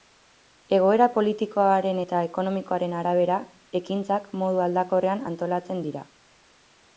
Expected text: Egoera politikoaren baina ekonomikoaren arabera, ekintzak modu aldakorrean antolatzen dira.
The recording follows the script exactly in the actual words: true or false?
false